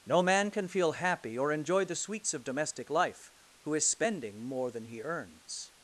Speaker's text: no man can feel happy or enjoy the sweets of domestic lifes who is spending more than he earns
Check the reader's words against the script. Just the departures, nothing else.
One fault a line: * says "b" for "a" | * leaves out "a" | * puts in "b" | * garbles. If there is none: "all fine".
* says "life" for "lifes"